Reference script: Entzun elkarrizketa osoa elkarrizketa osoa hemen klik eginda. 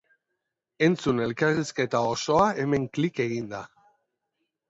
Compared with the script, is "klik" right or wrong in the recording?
right